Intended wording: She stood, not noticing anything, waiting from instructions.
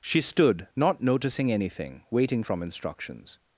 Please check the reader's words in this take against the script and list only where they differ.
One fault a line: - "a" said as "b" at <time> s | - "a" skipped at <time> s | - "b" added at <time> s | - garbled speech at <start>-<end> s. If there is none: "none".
none